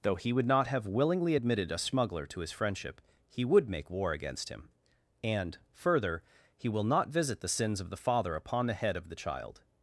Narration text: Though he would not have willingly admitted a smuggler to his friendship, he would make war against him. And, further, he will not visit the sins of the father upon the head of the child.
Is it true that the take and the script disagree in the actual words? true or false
false